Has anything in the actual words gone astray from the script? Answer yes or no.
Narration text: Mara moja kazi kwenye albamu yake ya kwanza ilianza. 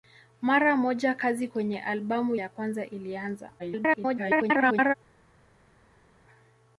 yes